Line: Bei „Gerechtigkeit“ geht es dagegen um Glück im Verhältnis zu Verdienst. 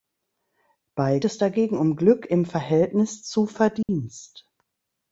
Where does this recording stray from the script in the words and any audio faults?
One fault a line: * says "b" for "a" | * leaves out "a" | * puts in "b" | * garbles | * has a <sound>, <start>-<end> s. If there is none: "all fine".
* leaves out "Gerechtigkeit geht"
* has a dropout, 3.8-3.9 s